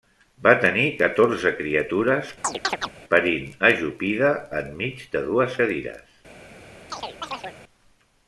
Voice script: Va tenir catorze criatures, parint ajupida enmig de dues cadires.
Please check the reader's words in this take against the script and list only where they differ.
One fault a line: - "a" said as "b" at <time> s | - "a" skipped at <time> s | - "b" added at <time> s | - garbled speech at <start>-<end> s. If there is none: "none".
none